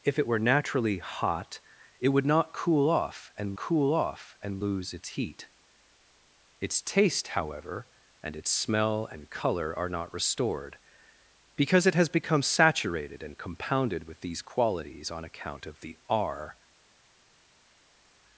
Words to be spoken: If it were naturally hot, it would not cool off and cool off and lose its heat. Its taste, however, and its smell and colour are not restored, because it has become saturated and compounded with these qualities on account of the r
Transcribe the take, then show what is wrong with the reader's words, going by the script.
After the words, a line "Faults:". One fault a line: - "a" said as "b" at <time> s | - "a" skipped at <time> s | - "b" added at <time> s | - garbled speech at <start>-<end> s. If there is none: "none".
If it were naturally hot, it would not cool off and cool off and lose its heat. Its taste, however, and its smell and colour are not restored, because it has become saturated and compounded with these qualities on account of the r
Faults:
none